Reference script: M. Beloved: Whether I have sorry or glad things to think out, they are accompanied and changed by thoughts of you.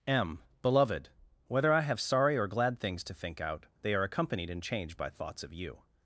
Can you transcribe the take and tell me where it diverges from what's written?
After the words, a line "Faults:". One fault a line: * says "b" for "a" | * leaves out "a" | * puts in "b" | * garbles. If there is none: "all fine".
M. Beloved: Whether I have sorry or glad things to think out, they are accompanied and changed by thoughts of you.
Faults:
all fine